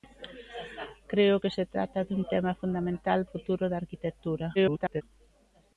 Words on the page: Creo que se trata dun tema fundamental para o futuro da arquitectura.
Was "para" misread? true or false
true